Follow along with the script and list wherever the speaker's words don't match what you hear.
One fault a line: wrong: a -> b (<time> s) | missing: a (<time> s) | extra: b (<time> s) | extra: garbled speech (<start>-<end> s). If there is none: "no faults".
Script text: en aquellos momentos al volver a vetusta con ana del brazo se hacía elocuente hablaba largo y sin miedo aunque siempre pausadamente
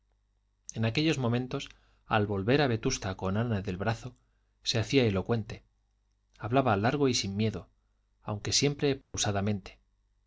no faults